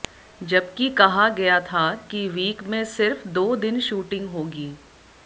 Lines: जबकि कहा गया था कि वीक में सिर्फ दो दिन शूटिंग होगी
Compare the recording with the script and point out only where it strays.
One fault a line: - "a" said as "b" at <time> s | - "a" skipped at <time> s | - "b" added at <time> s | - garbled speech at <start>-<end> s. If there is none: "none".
none